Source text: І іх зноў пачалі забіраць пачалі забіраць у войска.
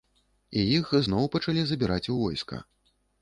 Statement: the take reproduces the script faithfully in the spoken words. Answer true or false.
false